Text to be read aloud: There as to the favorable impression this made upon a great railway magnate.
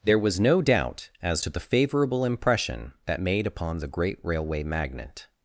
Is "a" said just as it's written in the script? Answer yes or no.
no